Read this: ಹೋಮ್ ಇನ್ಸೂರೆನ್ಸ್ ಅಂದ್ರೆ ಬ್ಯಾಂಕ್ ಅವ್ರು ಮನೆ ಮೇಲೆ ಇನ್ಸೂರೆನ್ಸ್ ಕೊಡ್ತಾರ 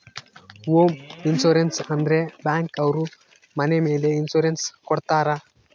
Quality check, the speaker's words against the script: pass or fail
pass